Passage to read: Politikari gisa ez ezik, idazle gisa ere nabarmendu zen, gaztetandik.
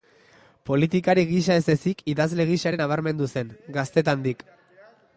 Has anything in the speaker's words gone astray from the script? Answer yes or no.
no